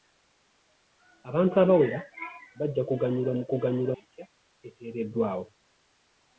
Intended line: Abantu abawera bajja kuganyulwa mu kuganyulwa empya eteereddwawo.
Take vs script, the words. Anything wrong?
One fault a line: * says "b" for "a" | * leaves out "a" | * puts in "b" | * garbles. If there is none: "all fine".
all fine